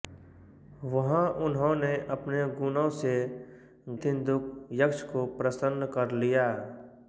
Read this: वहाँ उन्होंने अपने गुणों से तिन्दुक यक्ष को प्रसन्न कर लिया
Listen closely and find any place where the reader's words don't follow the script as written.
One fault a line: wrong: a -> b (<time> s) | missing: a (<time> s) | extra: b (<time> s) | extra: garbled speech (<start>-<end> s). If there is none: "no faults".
no faults